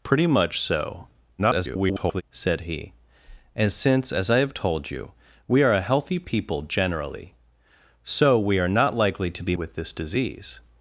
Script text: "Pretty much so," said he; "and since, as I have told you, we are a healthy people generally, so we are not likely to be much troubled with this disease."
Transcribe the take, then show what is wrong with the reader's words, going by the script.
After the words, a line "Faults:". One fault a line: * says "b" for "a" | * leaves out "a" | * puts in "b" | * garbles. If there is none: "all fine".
"Pretty much so," [garbled] said he; "and since, as I have told you, we are a healthy people generally, so we are not likely to be with this disease."
Faults:
* garbles
* leaves out "much troubled"